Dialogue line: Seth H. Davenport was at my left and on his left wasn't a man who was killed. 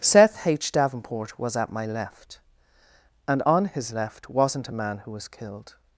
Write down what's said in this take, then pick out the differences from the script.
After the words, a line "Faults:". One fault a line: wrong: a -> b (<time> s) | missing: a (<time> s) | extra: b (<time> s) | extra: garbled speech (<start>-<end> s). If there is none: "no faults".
Seth H. Davenport was at my left and on his left wasn't a man who was killed.
Faults:
no faults